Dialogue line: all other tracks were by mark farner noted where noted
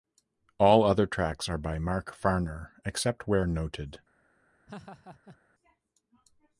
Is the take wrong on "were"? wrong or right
wrong